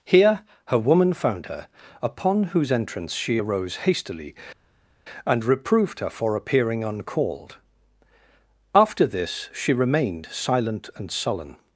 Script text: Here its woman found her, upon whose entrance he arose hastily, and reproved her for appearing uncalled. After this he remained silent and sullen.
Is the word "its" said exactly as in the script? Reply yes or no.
no